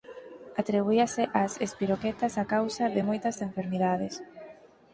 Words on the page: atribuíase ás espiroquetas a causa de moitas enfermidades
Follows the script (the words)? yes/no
yes